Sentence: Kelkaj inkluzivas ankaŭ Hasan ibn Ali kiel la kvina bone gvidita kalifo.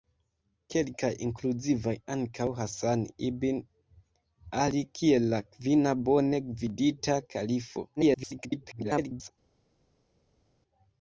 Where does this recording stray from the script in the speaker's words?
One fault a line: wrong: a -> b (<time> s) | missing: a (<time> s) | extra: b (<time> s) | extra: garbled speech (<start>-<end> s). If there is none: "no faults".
extra: garbled speech (8.0-9.3 s)